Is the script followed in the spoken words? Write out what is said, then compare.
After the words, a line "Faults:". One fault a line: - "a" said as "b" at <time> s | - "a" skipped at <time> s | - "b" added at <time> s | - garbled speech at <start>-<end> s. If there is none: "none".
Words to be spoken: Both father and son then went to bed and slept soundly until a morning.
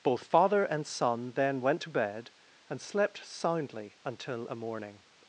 Both father and son then went to bed and slept soundly until a morning.
Faults:
none